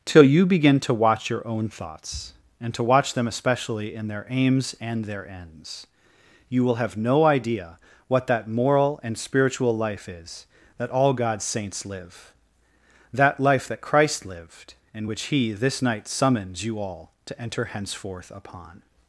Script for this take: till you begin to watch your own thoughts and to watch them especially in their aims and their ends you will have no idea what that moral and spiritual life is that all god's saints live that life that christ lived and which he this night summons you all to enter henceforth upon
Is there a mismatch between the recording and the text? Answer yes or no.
no